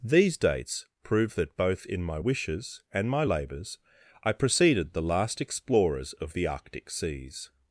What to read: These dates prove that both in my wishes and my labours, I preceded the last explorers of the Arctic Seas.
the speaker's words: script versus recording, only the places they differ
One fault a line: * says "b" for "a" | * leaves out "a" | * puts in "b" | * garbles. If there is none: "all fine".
all fine